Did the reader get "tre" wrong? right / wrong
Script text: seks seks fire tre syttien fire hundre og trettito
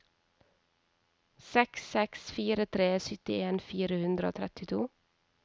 right